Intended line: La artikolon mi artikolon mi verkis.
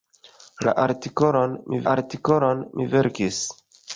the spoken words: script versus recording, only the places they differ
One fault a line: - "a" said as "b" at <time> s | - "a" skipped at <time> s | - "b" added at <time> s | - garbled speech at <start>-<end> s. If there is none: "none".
none